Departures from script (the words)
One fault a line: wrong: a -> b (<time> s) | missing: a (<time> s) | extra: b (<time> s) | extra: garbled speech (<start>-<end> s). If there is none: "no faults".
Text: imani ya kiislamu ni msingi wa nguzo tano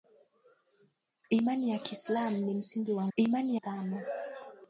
wrong: nguzo -> imani (3.2 s)